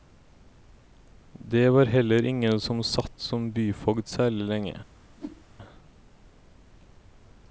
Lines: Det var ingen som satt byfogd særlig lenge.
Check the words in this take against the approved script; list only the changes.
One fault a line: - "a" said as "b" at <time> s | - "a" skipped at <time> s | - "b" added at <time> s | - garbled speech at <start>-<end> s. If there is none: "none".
- "heller" added at 1.9 s
- "som" added at 3.2 s